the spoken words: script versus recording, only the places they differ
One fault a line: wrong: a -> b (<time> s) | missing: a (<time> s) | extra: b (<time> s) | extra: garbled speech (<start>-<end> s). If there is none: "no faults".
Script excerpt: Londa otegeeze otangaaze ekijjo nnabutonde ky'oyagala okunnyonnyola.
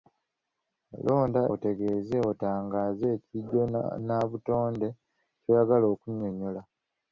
no faults